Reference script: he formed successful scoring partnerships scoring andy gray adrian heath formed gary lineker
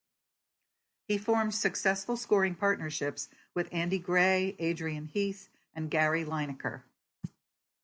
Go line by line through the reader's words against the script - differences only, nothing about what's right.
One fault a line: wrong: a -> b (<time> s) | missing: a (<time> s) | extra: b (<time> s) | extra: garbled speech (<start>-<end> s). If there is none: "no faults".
wrong: scoring -> with (3.5 s)
wrong: formed -> and (5.7 s)